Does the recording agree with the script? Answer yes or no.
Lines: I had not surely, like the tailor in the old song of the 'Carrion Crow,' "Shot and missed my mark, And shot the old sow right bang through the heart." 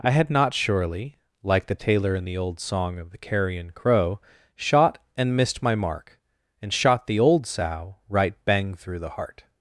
yes